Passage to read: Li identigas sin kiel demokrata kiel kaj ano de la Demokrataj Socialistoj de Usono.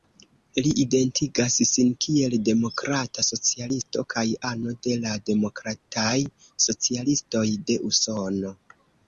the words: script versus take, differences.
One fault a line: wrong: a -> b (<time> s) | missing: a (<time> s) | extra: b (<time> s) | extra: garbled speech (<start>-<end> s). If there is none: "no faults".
wrong: kiel -> socialisto (3.3 s)